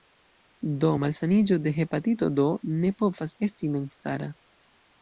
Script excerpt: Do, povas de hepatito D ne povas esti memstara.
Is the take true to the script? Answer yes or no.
no